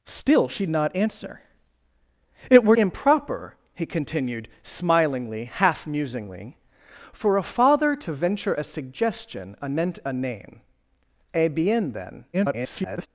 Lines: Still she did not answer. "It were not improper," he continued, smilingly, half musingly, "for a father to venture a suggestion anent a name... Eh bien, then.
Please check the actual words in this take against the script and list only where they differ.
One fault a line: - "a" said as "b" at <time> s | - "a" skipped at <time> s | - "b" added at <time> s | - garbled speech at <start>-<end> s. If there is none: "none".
- "did" skipped at 0.7 s
- "not" skipped at 2.8 s
- garbled speech at 12.3-13.1 s